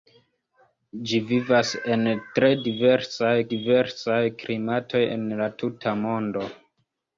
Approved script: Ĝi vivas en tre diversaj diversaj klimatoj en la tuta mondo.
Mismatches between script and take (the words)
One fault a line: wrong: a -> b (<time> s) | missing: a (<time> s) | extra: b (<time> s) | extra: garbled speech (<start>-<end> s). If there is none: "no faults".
no faults